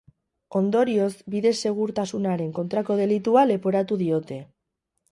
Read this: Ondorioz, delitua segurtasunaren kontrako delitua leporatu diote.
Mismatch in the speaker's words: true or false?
true